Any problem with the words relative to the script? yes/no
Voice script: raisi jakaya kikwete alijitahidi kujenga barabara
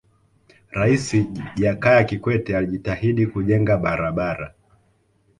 no